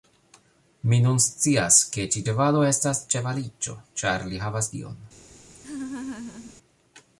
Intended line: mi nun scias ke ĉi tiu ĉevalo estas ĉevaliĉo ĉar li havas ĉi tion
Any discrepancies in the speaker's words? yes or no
yes